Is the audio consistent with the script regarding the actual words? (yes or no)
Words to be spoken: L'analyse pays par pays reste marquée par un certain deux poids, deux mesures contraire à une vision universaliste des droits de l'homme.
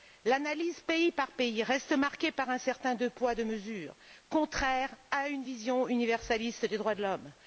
yes